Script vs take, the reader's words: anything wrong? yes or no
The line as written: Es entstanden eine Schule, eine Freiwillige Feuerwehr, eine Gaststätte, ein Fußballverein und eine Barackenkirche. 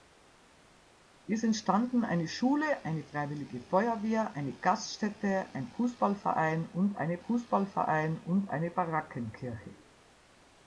yes